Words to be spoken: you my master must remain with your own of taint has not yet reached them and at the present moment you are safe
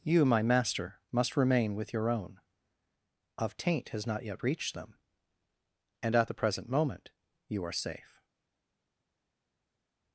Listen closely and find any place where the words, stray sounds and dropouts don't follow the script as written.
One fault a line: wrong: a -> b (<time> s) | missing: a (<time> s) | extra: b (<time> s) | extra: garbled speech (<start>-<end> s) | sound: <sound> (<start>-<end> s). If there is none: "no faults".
no faults